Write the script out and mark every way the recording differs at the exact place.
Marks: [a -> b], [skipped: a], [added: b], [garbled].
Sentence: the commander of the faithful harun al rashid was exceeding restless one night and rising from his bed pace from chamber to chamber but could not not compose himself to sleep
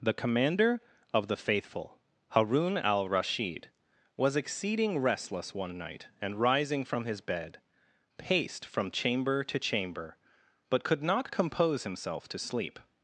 the commander of the faithful harun al rashid was exceeding restless one night and rising from his bed [pace -> paced] from chamber to chamber but could not [skipped: not] compose himself to sleep